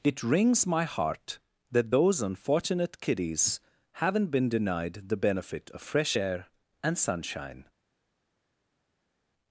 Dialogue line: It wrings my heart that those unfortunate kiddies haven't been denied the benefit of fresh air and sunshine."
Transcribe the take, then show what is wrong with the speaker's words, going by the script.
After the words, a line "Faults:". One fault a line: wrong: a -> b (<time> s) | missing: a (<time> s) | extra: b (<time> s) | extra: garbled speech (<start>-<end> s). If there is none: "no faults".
It wrings my heart that those unfortunate kiddies haven't been denied the benefit of fresh air and sunshine."
Faults:
no faults